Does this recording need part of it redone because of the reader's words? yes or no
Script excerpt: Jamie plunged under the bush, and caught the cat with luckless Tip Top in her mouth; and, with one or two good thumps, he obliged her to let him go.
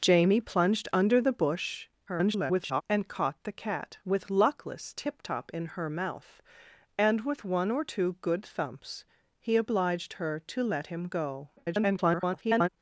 yes